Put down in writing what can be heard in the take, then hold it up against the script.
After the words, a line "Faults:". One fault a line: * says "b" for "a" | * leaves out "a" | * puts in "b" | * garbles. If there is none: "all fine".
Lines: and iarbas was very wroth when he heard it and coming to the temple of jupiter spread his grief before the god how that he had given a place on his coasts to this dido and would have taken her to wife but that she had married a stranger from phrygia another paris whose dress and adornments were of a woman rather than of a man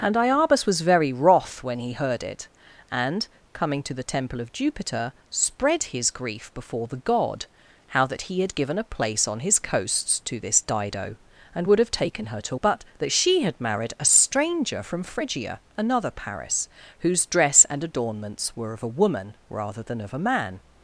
and iarbas was very wroth when he heard it and coming to the temple of jupiter spread his grief before the god how that he had given a place on his coasts to this dido and would have taken her to but that she had married a stranger from phrygia another paris whose dress and adornments were of a woman rather than of a man
Faults:
* leaves out "wife"